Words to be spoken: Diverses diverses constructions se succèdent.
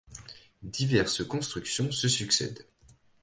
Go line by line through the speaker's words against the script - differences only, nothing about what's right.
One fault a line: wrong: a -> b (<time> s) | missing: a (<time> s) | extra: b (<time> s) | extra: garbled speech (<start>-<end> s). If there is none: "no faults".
missing: diverses (1.3 s)